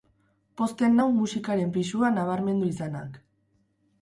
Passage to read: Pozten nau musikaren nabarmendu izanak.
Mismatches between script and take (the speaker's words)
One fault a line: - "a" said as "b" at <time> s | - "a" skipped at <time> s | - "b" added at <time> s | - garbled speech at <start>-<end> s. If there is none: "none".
- "pisua" added at 1.8 s